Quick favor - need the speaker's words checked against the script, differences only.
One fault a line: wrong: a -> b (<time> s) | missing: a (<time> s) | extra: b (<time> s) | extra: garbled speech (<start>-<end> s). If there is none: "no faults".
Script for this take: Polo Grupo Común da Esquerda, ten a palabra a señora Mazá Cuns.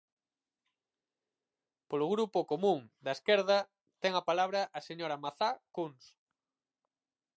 no faults